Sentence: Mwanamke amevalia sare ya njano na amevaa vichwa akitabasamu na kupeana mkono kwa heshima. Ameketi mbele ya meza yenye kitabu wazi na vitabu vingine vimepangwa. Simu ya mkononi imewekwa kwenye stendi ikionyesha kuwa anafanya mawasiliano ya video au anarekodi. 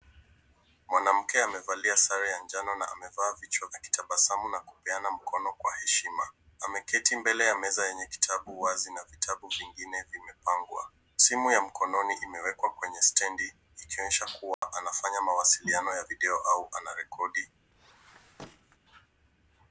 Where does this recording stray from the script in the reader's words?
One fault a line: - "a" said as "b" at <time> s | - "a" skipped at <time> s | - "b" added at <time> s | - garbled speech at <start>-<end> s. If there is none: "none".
none